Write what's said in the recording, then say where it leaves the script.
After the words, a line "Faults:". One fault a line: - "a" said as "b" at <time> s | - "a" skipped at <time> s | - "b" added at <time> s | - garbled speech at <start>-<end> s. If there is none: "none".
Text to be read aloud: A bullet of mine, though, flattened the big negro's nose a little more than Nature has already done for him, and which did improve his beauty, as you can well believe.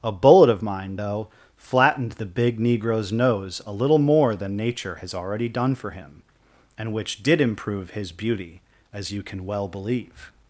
A bullet of mine, though, flattened the big negro's nose a little more than Nature has already done for him, and which did improve his beauty, as you can well believe.
Faults:
none